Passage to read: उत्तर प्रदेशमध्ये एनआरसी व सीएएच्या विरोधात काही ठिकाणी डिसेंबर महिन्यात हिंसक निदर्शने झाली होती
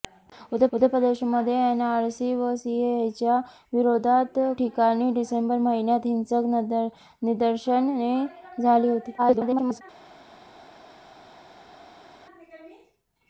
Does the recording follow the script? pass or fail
fail